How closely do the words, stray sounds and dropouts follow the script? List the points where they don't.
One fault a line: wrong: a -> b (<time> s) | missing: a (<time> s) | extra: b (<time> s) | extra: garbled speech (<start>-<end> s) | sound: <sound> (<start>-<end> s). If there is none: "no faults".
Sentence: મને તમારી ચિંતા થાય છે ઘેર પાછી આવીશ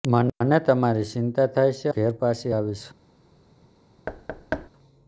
sound: thud (4.1-4.7 s)